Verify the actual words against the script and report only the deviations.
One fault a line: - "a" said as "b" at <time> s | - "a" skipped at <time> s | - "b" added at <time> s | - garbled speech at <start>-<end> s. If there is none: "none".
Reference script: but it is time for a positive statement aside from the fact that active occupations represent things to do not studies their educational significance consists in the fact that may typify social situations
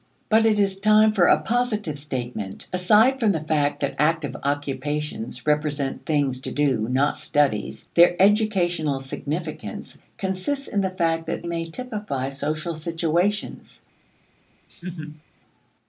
none